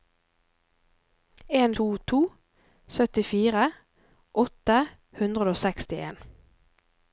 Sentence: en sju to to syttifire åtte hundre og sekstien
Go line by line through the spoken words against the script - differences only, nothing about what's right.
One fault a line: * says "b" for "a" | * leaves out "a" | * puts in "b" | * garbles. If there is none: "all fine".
* leaves out "sju"